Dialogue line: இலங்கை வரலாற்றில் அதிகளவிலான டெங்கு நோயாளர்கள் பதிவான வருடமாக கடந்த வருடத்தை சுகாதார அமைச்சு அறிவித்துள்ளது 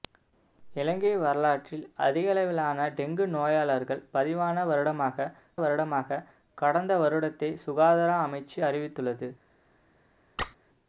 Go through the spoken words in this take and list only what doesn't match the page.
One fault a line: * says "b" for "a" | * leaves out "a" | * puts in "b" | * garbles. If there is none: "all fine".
* puts in "வருடமாக"